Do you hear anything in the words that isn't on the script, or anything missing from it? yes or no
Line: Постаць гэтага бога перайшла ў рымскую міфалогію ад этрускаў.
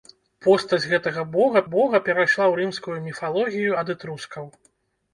yes